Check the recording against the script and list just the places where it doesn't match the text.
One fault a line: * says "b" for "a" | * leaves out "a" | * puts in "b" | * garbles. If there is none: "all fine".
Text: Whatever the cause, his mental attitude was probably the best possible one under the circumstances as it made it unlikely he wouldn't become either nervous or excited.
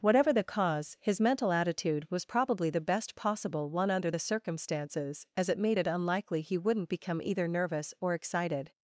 all fine